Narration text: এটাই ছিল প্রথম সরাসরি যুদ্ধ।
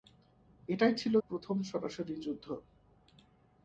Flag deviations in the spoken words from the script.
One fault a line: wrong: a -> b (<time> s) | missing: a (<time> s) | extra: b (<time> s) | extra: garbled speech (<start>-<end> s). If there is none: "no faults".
no faults